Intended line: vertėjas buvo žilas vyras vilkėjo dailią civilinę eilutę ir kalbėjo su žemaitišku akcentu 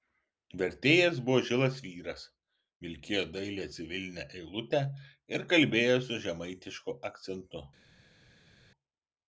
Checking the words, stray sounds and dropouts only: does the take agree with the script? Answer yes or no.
yes